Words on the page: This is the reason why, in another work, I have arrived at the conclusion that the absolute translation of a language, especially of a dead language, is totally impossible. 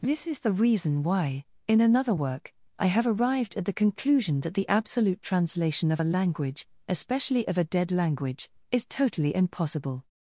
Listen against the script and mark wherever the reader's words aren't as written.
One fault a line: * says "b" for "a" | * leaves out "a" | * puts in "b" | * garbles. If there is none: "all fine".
all fine